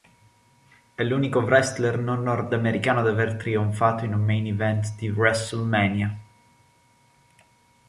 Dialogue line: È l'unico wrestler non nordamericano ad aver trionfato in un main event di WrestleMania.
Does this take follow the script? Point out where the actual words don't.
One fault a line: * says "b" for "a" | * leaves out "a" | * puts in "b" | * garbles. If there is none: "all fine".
all fine